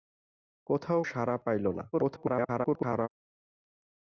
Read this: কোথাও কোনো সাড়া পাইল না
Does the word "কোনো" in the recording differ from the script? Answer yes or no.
yes